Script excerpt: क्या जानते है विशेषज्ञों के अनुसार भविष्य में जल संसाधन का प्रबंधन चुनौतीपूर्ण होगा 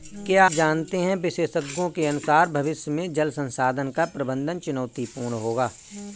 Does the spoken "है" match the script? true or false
true